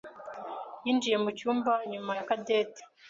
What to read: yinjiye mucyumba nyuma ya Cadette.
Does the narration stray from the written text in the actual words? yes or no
no